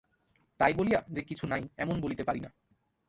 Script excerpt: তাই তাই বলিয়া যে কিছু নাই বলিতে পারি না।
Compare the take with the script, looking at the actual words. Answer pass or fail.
fail